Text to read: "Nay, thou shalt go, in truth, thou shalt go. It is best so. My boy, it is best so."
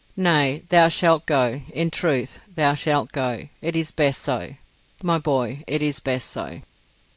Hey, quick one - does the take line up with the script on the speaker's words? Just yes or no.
yes